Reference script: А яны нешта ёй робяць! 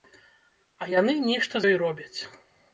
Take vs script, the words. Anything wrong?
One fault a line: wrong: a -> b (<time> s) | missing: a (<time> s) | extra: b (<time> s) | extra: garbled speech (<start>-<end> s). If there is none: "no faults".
no faults